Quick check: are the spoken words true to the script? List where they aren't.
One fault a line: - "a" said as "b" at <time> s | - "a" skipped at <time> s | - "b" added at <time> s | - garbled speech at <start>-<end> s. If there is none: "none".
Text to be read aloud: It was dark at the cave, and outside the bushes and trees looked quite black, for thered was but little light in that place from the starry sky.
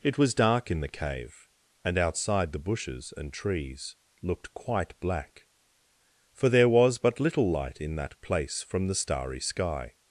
- "at" said as "in" at 0.7 s
- "thered" said as "there" at 6.5 s